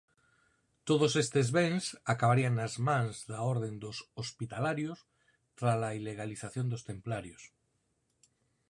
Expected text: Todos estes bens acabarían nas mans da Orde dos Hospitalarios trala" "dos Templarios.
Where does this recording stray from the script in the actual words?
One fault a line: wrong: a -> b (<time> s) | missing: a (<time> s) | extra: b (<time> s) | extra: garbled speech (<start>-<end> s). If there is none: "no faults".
extra: ilegalización (6.0 s)